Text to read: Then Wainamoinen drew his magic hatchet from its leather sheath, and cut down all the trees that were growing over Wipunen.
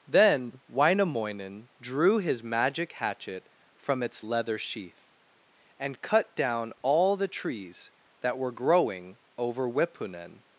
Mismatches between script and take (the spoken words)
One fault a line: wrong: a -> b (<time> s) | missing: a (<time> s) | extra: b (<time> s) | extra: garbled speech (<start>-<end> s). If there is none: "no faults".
no faults